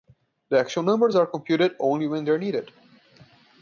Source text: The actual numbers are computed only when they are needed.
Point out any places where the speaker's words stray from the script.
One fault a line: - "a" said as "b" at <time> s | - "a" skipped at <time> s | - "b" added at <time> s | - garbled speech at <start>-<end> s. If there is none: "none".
none